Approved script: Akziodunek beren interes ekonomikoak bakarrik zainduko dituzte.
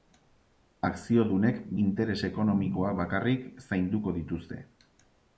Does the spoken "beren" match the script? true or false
false